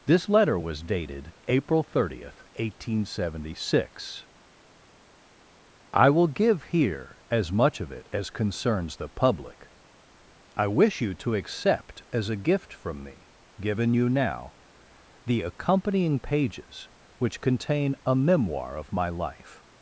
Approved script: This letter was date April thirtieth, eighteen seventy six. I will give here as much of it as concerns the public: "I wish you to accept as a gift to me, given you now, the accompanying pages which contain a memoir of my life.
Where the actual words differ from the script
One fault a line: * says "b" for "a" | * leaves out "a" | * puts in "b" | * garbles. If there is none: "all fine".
* says "dated" for "date"
* says "from" for "to"